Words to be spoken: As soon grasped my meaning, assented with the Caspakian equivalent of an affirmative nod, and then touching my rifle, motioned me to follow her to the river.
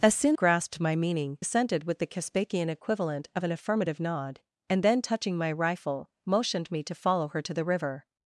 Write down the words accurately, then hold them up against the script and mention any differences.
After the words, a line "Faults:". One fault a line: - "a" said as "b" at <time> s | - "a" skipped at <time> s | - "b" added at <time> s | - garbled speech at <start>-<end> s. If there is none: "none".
As soon grasped my meaning, assented with the Caspakian equivalent of an affirmative nod, and then touching my rifle, motioned me to follow her to the river.
Faults:
none